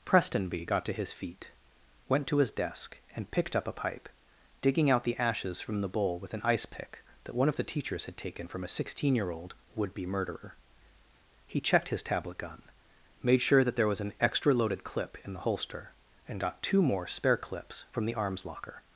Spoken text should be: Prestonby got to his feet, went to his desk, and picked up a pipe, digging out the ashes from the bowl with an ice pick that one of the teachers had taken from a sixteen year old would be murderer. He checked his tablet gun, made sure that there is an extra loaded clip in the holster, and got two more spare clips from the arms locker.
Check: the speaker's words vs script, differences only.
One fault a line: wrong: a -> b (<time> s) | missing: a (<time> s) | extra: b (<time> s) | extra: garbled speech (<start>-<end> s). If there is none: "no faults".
wrong: is -> was (13.9 s)